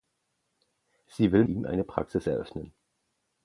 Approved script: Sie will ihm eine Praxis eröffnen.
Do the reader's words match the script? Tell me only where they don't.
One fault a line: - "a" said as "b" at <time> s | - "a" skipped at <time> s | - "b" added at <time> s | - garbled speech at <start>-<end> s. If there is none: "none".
none